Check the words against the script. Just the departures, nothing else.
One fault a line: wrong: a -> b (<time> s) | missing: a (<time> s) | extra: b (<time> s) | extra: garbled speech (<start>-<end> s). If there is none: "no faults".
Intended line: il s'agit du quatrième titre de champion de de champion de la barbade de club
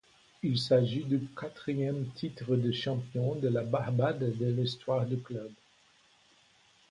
wrong: de champion -> la barbade (3.5 s)
wrong: la barbade de -> l'histoire du (4.5 s)